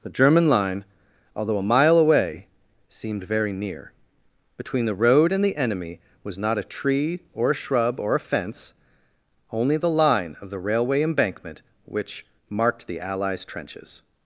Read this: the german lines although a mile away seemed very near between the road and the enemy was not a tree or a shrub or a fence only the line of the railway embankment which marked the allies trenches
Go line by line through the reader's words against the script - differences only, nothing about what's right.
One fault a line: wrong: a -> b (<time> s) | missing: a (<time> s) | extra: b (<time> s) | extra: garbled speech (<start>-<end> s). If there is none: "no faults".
wrong: lines -> line (0.5 s)